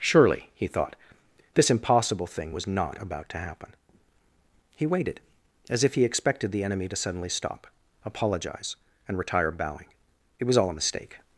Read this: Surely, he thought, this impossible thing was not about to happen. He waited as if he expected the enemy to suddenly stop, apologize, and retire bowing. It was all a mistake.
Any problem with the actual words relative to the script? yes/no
no